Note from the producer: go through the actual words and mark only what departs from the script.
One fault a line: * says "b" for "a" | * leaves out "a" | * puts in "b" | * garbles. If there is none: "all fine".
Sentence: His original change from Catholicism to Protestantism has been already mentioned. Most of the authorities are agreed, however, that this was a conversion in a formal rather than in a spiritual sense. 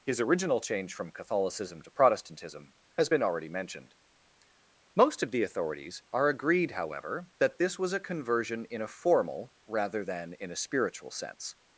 all fine